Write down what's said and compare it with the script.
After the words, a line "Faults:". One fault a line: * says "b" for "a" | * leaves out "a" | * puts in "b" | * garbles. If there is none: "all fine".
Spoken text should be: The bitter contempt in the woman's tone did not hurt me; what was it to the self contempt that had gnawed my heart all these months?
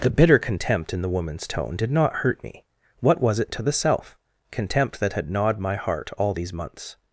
The bitter contempt in the woman's tone did not hurt me; what was it to the self contempt that had gnawed my heart all these months?
Faults:
all fine